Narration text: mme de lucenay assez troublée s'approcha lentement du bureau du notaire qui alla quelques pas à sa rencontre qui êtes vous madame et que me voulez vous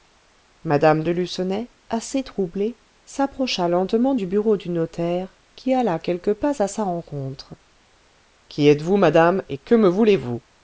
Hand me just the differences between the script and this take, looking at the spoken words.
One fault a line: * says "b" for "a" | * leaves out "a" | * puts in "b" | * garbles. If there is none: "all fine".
all fine